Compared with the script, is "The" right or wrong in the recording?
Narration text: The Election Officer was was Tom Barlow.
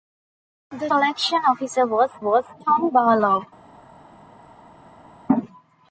right